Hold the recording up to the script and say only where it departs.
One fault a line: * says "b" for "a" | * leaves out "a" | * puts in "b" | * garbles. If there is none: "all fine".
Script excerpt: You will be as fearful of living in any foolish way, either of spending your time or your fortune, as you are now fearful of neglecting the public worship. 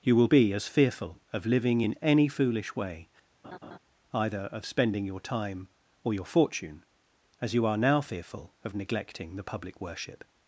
all fine